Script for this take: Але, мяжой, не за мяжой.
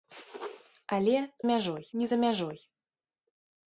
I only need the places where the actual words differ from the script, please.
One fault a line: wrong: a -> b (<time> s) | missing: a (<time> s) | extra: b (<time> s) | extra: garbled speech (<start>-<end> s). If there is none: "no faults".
no faults